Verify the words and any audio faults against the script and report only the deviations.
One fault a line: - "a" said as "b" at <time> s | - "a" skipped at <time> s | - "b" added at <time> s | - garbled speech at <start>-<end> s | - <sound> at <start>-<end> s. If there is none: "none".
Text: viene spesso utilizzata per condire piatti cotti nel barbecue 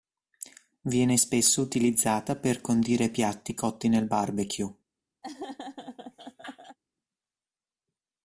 - laugh at 5.2-6.8 s